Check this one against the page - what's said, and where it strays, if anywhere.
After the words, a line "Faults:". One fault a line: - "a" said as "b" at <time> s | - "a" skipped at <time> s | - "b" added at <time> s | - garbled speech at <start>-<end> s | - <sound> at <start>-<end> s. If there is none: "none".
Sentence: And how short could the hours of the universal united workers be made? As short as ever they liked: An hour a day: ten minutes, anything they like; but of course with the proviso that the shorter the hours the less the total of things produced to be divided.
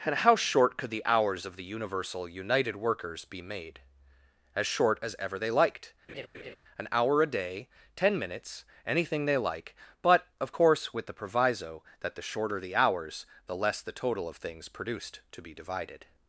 And how short could the hours of the universal united workers be made? As short as ever they liked: An hour a day: ten minutes, anything they like; but of course with the proviso that the shorter the hours the less the total of things produced to be divided.
Faults:
- laugh at 6.1-6.6 s